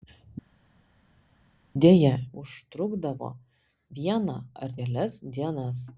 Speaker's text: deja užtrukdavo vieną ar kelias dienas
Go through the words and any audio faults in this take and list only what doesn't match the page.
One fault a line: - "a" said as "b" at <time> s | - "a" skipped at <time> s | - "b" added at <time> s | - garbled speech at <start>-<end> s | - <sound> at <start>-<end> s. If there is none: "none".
none